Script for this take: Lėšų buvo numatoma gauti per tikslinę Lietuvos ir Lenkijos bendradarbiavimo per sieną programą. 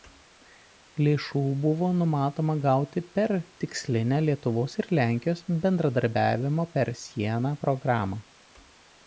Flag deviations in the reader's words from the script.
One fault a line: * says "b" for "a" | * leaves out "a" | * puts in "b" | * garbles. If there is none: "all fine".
all fine